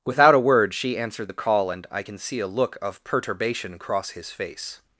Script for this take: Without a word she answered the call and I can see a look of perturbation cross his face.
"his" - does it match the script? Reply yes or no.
yes